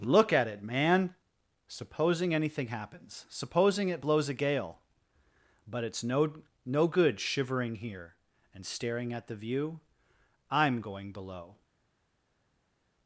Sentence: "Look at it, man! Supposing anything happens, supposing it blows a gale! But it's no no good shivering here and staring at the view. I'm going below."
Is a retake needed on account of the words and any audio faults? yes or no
no